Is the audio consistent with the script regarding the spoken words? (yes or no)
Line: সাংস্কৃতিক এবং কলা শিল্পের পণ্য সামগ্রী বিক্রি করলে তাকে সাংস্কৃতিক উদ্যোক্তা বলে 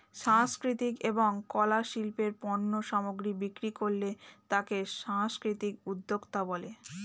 yes